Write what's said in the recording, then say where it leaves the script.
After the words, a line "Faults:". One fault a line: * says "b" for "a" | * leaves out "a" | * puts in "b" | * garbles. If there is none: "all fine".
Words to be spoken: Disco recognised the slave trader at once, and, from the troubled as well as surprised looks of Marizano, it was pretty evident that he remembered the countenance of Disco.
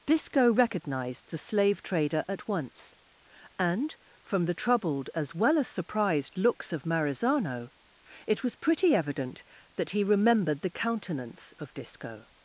Disco recognised the slave trader at once, and, from the troubled as well as surprised looks of Marizano, it was pretty evident that he remembered the countenance of Disco.
Faults:
all fine